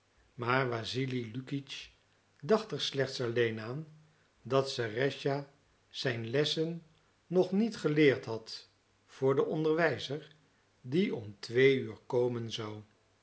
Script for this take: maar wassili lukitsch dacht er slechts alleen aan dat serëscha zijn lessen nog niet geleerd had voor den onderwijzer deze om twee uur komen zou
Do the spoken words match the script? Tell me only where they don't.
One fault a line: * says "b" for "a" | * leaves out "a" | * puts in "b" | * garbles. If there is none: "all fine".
* says "die" for "deze"